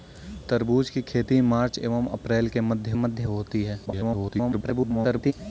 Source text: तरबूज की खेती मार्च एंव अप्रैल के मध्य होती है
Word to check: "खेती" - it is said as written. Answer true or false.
true